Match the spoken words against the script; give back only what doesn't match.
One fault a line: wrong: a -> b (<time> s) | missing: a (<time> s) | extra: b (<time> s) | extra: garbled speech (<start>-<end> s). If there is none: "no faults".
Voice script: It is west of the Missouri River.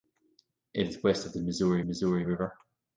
extra: Missouri (1.8 s)